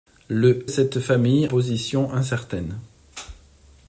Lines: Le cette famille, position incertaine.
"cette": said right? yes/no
yes